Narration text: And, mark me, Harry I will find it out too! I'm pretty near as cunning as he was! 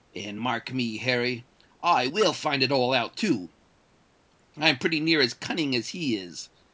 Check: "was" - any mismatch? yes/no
yes